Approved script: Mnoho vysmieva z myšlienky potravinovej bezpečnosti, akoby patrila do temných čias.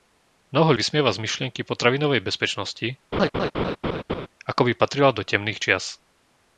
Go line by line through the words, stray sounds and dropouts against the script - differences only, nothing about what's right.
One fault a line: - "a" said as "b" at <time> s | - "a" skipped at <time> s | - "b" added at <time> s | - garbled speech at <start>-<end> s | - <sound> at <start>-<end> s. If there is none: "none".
- laugh at 3.1-4.3 s